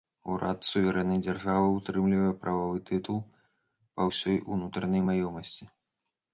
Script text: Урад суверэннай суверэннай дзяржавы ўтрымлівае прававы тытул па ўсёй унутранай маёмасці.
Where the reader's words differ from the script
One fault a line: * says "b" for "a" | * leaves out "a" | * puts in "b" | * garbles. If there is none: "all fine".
* leaves out "суверэннай"